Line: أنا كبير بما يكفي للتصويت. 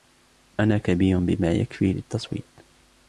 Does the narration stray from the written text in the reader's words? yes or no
no